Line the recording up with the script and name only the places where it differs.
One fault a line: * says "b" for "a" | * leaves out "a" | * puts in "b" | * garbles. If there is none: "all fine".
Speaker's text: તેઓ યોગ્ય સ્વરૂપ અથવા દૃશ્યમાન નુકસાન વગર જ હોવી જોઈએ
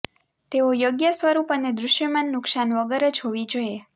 * says "અને" for "અથવા"